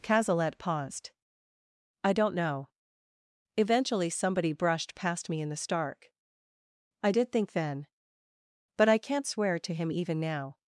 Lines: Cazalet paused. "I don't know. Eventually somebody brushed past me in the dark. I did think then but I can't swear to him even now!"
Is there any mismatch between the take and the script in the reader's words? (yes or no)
yes